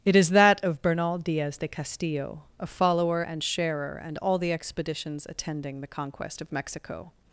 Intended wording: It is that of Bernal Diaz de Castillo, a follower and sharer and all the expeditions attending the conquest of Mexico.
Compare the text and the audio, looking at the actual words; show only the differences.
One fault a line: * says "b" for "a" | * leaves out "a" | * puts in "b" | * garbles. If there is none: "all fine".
all fine